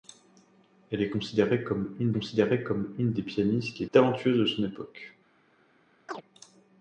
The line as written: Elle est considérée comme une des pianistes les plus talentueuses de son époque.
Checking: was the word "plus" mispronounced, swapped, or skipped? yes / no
yes